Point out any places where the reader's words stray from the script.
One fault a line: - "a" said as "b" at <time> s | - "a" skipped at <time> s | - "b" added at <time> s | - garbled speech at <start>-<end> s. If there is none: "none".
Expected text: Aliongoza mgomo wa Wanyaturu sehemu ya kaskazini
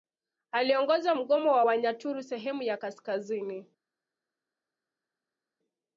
none